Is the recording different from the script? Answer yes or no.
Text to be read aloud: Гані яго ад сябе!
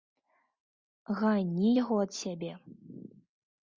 no